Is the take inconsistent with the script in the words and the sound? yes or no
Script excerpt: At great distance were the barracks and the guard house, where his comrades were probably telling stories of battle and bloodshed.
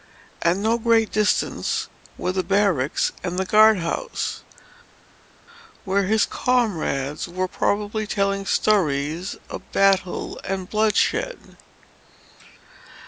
yes